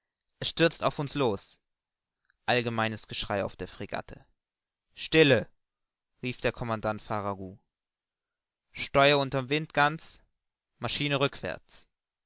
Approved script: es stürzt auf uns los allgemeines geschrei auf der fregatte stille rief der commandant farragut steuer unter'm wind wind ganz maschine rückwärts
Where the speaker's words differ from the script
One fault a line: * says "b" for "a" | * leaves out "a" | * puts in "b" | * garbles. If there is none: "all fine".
* leaves out "wind"